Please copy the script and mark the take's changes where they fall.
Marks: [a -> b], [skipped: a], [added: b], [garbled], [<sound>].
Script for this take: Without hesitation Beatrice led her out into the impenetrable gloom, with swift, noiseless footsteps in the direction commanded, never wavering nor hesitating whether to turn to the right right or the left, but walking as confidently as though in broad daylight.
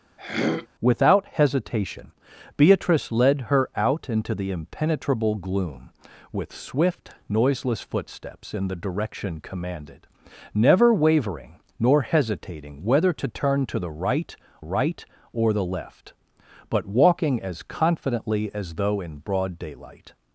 [throat clearing] Without hesitation Beatrice led her out into the impenetrable gloom, with swift, noiseless footsteps in the direction commanded, never wavering nor hesitating whether to turn to the right right or the left, but walking as confidently as though in broad daylight.